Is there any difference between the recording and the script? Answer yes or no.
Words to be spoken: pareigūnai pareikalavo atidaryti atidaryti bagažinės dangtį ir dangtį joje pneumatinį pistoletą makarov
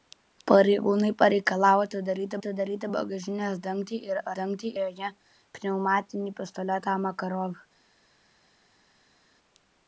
no